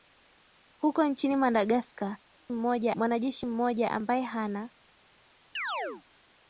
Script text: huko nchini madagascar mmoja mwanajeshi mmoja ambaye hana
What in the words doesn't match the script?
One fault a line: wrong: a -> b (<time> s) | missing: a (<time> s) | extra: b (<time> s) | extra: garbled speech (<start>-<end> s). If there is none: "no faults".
no faults